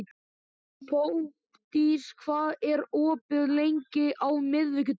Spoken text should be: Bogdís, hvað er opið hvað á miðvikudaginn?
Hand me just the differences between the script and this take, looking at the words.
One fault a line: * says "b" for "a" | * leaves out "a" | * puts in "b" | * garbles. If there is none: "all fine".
* says "lengi" for "hvað"